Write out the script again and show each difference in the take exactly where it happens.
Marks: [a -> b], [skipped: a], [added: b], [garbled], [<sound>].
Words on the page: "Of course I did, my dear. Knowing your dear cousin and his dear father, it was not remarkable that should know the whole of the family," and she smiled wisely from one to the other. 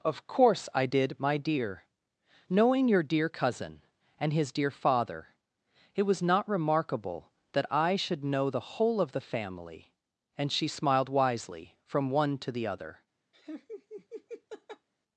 "Of course I did, my dear. Knowing your dear cousin and his dear father, it was not remarkable that [added: I] should know the whole of the family," and she smiled wisely from one to the other. [laugh]